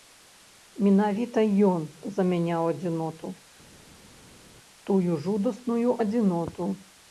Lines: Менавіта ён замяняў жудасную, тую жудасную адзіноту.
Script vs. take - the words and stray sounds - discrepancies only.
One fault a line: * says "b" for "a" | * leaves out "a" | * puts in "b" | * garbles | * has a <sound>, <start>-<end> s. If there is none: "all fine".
* says "адзіноту" for "жудасную"